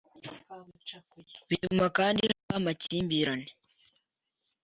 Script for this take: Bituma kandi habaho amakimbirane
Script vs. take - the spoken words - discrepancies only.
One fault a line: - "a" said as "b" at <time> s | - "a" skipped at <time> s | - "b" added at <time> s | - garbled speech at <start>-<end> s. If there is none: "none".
none